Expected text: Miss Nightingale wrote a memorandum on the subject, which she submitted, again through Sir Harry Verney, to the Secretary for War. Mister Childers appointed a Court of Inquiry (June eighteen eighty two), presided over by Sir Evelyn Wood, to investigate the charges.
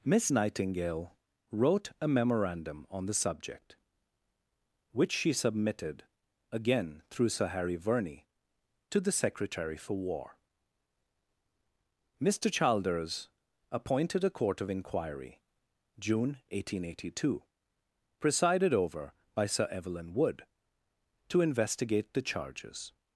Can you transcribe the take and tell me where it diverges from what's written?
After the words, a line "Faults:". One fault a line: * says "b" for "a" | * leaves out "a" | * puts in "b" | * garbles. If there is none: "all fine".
Miss Nightingale wrote a memorandum on the subject, which she submitted, again through Sir Harry Verney, to the Secretary for War. Mister Childers appointed a Court of Inquiry (June eighteen eighty two), presided over by Sir Evelyn Wood, to investigate the charges.
Faults:
all fine